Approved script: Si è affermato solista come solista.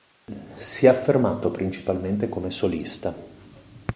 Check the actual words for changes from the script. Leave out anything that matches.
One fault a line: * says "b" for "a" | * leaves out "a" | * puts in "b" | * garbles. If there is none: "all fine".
* says "principalmente" for "solista"